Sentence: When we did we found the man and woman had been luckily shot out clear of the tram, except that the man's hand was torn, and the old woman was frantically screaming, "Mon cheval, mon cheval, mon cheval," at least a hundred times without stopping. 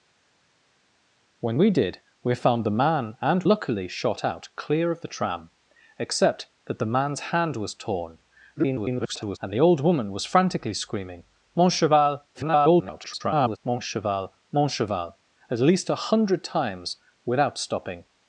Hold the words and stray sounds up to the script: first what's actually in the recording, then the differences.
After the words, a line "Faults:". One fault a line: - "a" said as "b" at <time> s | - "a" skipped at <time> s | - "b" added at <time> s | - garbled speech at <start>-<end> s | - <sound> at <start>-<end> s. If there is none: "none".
When we did we found the man and luckily shot out clear of the tram, except that the man's hand was torn, [garbled] and the old woman was frantically screaming, "Mon cheval, [garbled] mon cheval, mon cheval," at least a hundred times without stopping.
Faults:
- "woman had been" skipped at 3.4 s
- garbled speech at 8.5-9.4 s
- garbled speech at 12.3-13.6 s